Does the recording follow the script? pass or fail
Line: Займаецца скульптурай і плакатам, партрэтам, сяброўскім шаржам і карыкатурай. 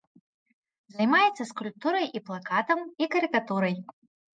fail